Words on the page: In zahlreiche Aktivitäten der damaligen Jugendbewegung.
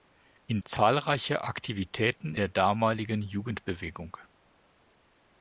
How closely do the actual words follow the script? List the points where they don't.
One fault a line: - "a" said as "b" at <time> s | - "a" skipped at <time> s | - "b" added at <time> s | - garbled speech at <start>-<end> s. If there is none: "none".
none